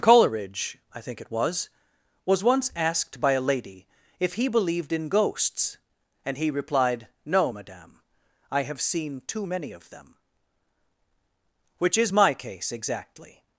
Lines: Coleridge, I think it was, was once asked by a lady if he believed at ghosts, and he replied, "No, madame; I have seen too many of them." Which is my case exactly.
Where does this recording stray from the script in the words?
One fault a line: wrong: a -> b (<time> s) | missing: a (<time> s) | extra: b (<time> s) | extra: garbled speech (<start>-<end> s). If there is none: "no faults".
wrong: at -> in (4.9 s)